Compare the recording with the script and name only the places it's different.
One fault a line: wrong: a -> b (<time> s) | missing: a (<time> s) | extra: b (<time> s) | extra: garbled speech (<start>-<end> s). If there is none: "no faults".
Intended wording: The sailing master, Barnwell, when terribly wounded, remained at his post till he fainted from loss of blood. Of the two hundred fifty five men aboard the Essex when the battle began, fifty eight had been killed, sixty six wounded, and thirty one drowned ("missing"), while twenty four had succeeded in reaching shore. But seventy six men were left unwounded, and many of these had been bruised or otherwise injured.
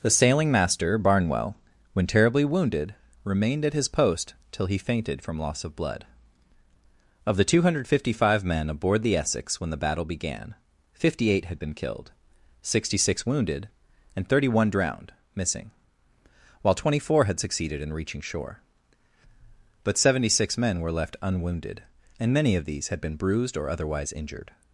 no faults